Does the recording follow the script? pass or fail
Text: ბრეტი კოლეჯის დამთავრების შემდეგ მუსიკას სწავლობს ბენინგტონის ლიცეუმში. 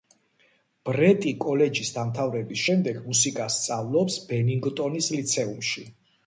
pass